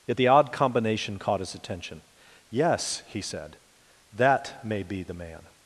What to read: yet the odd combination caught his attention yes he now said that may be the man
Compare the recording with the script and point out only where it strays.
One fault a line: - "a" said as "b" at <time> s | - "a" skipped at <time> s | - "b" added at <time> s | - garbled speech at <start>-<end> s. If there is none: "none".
- "now" skipped at 3.2 s